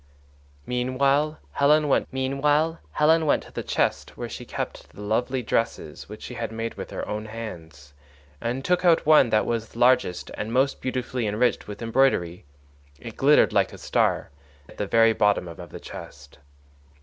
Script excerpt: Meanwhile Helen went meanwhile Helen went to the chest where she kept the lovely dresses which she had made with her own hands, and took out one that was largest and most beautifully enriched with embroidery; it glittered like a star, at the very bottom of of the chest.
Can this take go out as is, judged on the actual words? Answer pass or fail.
pass